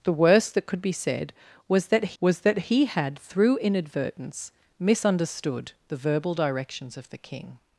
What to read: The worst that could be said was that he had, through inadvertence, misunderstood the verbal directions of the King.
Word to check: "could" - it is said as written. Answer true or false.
true